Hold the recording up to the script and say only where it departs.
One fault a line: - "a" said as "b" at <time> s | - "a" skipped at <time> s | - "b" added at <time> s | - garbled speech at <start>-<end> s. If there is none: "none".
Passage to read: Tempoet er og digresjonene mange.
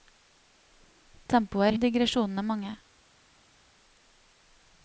none